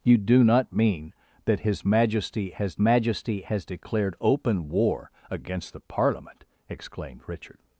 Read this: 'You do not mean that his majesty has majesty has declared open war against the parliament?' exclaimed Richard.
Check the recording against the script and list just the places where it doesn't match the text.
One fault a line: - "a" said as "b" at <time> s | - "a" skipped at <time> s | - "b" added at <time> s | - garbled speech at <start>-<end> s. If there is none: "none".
none